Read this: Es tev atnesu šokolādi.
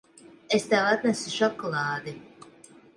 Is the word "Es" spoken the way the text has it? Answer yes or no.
yes